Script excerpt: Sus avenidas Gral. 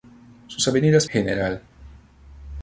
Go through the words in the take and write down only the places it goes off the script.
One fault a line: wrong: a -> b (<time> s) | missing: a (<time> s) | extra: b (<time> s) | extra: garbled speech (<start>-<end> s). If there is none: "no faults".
no faults